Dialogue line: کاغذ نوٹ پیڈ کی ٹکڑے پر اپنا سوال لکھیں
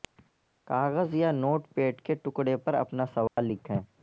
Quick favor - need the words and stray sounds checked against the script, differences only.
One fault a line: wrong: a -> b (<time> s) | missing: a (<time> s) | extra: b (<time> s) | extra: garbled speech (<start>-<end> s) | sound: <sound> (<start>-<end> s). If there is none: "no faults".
extra: یا (1.1 s)
wrong: کی -> کے (2.0 s)
sound: dropout (3.3-3.4 s)